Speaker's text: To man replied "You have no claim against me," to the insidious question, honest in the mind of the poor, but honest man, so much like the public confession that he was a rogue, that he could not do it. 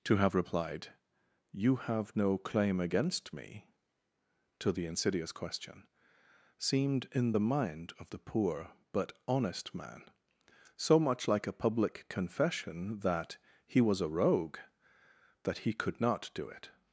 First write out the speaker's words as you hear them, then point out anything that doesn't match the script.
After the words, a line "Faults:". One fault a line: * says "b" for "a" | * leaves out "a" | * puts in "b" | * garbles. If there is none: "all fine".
To have replied "You have no claim against me," to the insidious question, seemed in the mind of the poor, but honest man, so much like a public confession that he was a rogue, that he could not do it.
Faults:
* says "have" for "man"
* says "seemed" for "honest"
* says "a" for "the"